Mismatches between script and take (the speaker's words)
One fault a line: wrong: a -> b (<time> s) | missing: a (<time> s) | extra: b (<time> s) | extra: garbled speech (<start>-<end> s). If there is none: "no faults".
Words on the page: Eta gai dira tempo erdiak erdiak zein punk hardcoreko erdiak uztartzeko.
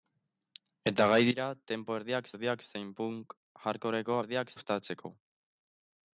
no faults